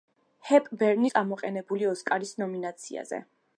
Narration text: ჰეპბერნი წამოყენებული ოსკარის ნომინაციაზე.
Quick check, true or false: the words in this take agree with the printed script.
true